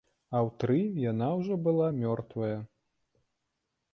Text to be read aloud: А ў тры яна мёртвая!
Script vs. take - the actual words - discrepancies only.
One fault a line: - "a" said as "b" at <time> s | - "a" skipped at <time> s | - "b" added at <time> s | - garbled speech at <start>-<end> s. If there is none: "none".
- "ўжо была" added at 1.4 s